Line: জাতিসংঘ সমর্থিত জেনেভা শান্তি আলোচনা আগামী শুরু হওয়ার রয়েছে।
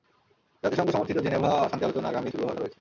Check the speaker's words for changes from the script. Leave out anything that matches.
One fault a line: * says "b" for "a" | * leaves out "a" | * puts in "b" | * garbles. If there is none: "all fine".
all fine